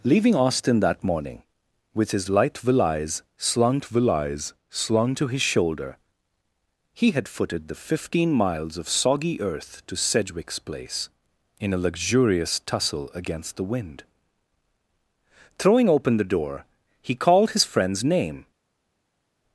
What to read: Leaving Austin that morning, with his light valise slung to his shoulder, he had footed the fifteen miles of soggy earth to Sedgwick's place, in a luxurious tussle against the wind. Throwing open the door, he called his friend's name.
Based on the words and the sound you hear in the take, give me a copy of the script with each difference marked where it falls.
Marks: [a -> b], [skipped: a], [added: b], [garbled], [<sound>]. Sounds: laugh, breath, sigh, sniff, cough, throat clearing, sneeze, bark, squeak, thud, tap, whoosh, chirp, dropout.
Leaving Austin that morning, with his light valise slung [added: valise slung] to his shoulder, he had footed the fifteen miles of soggy earth to Sedgwick's place, in a luxurious tussle against the wind. Throwing open the door, he called his friend's name.